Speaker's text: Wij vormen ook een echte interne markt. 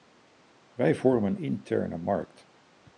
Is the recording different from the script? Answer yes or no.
yes